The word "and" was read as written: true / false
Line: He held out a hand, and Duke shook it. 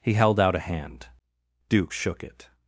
false